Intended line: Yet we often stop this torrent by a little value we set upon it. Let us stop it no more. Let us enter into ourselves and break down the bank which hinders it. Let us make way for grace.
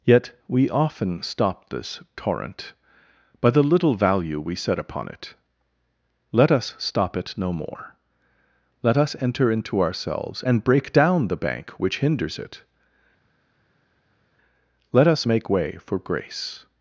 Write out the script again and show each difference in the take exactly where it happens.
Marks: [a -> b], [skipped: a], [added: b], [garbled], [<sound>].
Yet we often stop this torrent by [a -> the] little value we set upon it. Let us stop it no more. Let us enter into ourselves and break down the bank which hinders it. Let us make way for grace.